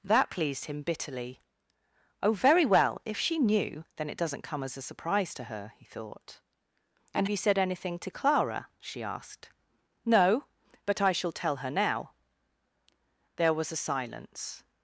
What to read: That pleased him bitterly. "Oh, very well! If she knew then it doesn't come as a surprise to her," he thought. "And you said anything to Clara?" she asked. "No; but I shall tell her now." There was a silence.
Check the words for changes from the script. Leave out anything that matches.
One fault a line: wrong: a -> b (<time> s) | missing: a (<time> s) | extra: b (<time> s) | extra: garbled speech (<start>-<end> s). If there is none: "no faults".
no faults